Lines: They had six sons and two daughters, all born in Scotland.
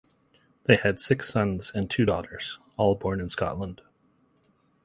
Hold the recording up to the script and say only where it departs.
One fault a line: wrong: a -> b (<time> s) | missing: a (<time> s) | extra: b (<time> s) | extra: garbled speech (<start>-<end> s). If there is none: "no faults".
no faults